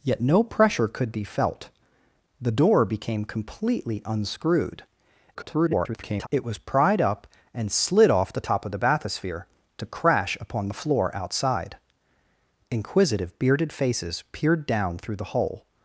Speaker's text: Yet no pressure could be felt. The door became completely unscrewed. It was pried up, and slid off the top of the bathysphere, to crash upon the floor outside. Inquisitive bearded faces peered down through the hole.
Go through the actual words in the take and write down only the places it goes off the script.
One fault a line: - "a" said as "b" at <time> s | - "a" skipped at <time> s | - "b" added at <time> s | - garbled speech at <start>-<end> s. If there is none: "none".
- garbled speech at 5.3-6.3 s